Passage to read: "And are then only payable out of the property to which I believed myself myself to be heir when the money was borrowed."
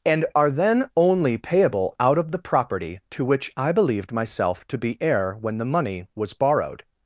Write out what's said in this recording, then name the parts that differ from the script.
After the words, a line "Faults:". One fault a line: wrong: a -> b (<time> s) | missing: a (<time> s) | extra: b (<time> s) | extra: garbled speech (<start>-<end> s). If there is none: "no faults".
"And are then only payable out of the property to which I believed myself to be heir when the money was borrowed."
Faults:
missing: myself (4.7 s)